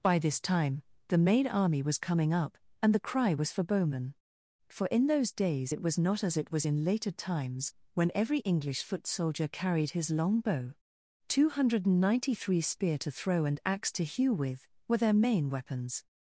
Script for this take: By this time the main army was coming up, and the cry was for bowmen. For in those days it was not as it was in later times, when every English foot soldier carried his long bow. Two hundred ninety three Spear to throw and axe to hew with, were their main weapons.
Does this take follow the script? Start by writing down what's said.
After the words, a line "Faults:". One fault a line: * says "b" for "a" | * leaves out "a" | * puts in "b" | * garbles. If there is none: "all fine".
By this time the main army was coming up, and the cry was for bowmen. For in those days it was not as it was in later times, when every English foot soldier carried his long bow. Two hundred ninety three Spear to throw and axe to hew with, were their main weapons.
Faults:
all fine